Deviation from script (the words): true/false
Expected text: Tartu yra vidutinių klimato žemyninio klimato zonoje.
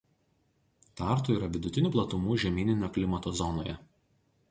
true